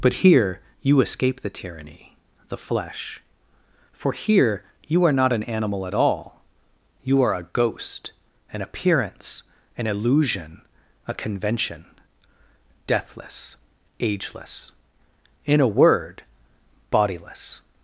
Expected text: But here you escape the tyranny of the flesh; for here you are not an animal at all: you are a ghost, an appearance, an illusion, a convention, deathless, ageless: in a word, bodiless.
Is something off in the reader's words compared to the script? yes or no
yes